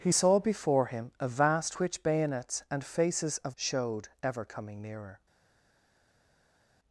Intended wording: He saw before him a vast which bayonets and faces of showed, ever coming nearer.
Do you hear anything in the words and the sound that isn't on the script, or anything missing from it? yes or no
no